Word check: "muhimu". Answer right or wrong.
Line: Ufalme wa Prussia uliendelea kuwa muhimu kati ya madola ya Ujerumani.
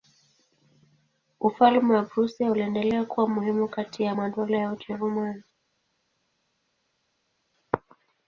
right